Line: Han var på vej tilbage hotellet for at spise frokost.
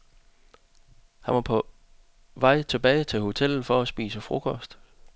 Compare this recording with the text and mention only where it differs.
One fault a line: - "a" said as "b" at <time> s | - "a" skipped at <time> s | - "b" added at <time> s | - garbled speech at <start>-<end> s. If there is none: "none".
- "til" added at 3.0 s